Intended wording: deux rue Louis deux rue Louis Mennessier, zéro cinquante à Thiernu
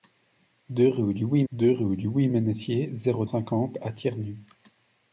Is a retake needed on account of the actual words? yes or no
no